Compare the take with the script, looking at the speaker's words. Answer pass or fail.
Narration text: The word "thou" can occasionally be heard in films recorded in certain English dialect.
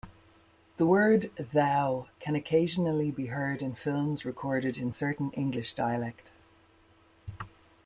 pass